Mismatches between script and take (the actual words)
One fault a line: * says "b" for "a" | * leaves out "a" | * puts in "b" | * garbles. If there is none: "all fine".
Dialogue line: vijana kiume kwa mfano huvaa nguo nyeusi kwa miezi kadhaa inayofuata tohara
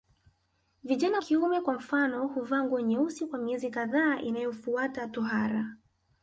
all fine